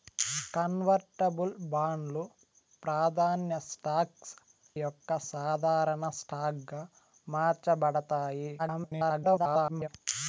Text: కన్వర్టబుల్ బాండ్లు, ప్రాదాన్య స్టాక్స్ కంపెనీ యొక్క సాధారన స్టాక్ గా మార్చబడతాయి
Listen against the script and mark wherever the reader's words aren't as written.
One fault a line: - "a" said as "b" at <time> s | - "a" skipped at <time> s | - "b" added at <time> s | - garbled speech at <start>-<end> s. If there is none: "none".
- "కంపెనీ" skipped at 4.3 s
- garbled speech at 8.6-9.9 s